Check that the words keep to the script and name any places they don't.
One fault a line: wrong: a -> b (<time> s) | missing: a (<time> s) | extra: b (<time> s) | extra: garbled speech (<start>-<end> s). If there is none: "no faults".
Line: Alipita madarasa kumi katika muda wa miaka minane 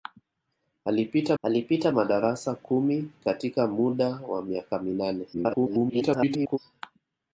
extra: alipita (1.4 s)
extra: garbled speech (5.3-6.6 s)